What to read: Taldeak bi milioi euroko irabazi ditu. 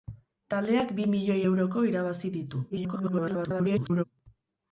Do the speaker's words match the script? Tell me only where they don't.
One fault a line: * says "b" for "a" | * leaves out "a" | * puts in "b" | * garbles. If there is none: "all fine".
* garbles